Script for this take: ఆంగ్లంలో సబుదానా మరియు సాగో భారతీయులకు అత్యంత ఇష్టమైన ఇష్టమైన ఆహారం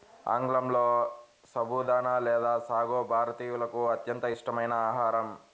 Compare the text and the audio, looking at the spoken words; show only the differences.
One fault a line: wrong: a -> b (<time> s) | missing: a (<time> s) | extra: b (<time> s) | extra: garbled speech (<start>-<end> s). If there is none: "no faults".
wrong: మరియు -> లేదా (2.2 s)
missing: ఇష్టమైన (4.7 s)